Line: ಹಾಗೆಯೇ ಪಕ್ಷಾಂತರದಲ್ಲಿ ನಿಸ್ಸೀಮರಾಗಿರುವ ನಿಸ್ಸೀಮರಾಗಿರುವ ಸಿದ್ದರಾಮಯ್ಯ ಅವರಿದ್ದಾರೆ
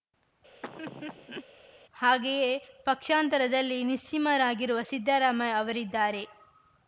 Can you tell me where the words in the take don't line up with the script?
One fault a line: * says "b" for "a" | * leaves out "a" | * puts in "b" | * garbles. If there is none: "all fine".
* leaves out "ನಿಸ್ಸೀಮರಾಗಿರುವ"